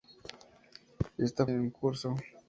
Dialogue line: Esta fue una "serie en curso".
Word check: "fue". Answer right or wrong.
wrong